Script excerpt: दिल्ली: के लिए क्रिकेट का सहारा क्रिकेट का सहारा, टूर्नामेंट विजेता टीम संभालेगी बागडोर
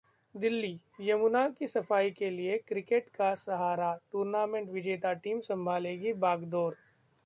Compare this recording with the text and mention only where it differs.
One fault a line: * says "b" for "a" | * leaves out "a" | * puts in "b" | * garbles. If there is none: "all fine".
* says "यमुना की सफाई के लिए" for "के लिए क्रिकेट का सहारा"